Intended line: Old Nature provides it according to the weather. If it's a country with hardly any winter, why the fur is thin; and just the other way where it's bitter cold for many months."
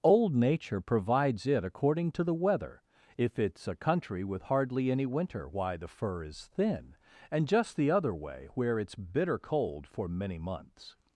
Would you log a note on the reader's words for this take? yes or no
no